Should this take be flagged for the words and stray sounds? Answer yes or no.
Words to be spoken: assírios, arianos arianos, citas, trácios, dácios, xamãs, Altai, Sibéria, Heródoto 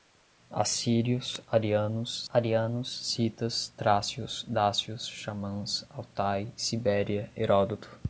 no